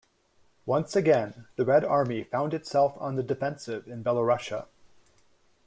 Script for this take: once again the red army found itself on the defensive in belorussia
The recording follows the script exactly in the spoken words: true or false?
true